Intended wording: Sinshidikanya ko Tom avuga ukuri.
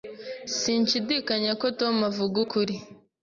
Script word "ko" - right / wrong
right